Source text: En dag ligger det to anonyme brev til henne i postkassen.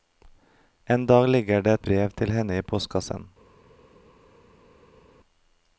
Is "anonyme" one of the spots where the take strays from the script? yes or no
yes